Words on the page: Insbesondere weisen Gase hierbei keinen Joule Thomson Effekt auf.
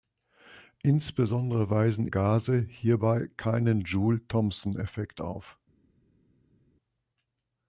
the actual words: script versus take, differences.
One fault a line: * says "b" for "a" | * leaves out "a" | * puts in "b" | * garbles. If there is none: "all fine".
all fine